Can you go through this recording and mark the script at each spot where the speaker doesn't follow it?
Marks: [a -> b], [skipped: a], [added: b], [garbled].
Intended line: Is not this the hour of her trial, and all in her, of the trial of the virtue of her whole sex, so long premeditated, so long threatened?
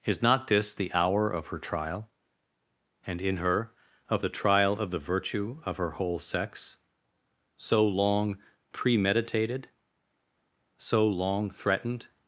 Is not this the hour of her trial, and [skipped: all] in her, of the trial of the virtue of her whole sex, so long premeditated, so long threatened?